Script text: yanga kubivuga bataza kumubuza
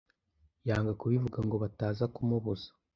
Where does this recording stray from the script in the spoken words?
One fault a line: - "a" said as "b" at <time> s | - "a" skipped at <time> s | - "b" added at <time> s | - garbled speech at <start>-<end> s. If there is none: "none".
- "ngo" added at 1.5 s